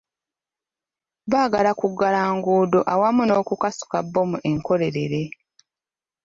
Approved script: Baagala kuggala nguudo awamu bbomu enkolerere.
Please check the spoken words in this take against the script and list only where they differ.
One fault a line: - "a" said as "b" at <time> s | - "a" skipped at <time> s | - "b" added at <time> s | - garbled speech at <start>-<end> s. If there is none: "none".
- "n'okukasuka" added at 3.3 s